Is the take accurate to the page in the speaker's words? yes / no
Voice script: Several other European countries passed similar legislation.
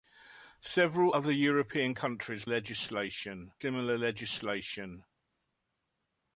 no